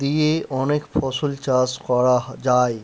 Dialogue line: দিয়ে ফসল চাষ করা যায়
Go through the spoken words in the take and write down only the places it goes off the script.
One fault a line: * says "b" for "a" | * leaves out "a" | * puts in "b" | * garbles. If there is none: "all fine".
* puts in "অনেক"